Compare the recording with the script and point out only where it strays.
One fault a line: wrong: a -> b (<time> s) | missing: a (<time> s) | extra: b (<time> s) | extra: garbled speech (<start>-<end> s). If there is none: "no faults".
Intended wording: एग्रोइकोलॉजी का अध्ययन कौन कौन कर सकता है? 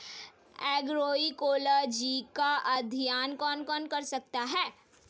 no faults